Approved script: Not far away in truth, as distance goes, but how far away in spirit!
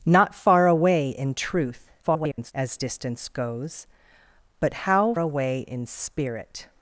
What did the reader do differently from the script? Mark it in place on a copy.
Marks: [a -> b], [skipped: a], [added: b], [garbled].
Not far away in truth, [garbled] as distance goes, but how [skipped: far] away in spirit!